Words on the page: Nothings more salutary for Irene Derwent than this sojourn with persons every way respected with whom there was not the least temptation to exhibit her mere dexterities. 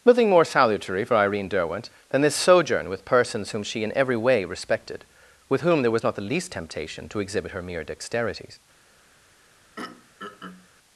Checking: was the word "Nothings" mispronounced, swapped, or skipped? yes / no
yes